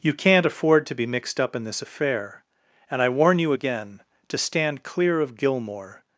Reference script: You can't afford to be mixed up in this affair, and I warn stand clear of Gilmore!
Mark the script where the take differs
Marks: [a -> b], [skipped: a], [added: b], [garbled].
You can't afford to be mixed up in this affair, and I warn [added: you again to] stand clear of Gilmore!